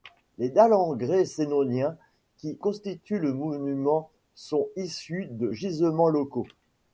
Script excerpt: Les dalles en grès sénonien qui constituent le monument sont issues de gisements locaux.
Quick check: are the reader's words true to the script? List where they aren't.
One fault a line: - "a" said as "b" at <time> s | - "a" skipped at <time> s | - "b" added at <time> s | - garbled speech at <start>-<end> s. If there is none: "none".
none